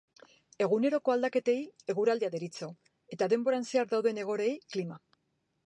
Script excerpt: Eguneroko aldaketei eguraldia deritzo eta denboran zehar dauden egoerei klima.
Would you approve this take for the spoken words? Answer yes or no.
yes